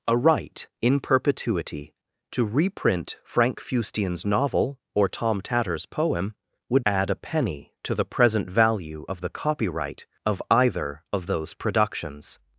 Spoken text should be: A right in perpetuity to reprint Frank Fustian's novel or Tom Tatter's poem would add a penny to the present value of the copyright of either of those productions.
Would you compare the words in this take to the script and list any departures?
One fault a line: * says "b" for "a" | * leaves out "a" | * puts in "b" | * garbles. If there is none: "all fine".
all fine